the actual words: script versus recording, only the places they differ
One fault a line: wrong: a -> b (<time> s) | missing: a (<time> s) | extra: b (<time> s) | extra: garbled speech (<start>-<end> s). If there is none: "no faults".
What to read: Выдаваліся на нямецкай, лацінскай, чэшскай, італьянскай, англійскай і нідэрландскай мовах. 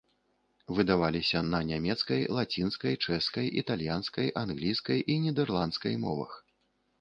no faults